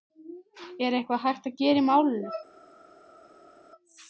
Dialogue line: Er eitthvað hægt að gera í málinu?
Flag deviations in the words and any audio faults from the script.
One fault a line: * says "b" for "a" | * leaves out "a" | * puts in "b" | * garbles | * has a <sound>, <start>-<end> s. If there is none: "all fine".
all fine